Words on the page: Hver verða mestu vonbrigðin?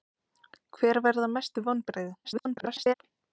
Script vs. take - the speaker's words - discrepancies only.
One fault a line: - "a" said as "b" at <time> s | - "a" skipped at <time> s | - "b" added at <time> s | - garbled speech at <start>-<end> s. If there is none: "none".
- garbled speech at 2.2-2.9 s